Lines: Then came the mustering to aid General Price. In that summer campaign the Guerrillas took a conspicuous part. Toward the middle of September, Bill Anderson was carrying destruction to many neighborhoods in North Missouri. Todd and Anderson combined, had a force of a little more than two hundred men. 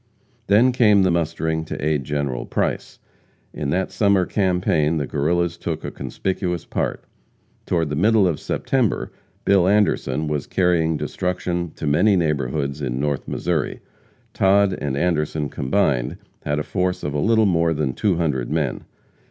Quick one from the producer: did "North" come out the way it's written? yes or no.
yes